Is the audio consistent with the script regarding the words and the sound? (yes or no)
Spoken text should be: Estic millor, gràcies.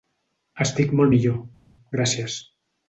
no